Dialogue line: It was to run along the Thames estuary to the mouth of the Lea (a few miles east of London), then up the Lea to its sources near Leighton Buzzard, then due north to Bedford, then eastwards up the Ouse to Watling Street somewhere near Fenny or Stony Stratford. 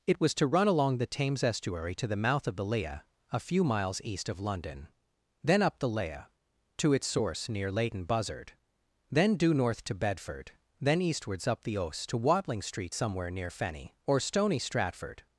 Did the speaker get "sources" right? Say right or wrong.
wrong